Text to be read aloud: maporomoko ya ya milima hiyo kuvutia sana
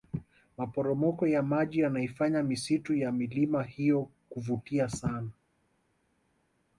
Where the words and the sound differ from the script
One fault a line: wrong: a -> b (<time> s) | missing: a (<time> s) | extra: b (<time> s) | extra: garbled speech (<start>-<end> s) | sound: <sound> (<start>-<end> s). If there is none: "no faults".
extra: maji yanaifanya misitu (1.4 s)